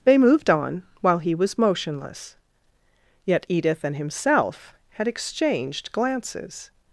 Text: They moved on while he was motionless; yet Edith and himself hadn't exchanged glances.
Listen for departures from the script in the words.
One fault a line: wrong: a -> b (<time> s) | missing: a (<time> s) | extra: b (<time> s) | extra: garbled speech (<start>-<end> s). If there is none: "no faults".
wrong: hadn't -> had (4.9 s)